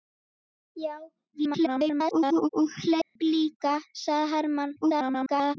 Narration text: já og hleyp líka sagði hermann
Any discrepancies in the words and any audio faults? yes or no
yes